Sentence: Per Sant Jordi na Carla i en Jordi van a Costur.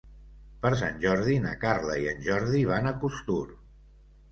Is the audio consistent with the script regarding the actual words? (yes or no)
yes